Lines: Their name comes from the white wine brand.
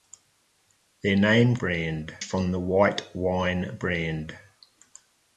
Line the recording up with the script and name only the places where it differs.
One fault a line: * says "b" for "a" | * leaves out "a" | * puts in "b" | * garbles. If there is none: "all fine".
* says "brand" for "comes"